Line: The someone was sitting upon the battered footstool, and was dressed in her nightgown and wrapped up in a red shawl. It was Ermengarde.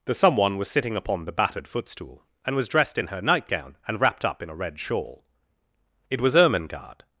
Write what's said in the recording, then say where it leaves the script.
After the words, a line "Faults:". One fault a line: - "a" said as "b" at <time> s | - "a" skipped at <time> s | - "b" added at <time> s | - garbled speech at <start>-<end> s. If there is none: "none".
The someone was sitting upon the battered footstool, and was dressed in her nightgown and wrapped up in a red shawl. It was Ermengarde.
Faults:
none